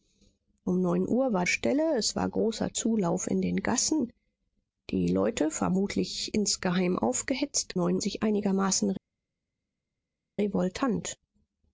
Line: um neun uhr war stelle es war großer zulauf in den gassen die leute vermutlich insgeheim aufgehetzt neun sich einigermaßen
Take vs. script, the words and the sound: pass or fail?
pass